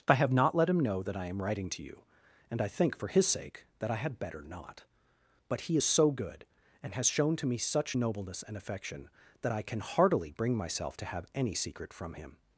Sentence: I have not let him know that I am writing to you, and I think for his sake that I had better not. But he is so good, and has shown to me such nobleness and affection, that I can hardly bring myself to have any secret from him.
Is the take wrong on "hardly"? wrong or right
wrong